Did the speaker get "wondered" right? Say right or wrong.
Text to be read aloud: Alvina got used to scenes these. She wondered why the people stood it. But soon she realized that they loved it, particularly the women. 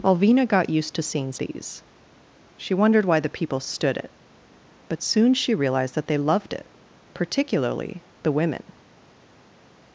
right